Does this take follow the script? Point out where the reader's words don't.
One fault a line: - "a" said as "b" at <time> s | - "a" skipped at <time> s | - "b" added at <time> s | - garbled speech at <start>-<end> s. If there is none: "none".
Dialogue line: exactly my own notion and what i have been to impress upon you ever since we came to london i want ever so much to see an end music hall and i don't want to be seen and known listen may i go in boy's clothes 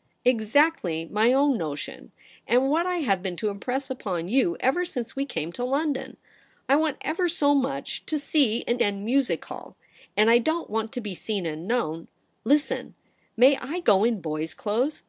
none